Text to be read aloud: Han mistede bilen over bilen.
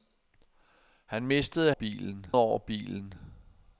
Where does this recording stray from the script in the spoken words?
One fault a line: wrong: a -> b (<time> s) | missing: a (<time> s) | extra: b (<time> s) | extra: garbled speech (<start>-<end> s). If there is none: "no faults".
no faults